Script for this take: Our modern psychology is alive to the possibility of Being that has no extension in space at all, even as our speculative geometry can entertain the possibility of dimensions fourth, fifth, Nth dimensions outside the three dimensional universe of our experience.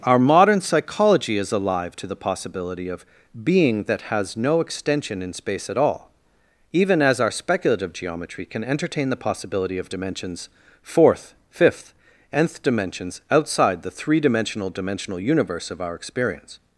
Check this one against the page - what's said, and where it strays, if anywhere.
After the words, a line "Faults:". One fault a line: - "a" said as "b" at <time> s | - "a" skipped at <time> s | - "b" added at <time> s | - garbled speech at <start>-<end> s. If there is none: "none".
Our modern psychology is alive to the possibility of Being that has no extension in space at all, even as our speculative geometry can entertain the possibility of dimensions fourth, fifth, Nth dimensions outside the three dimensional dimensional universe of our experience.
Faults:
- "dimensional" added at 14.7 s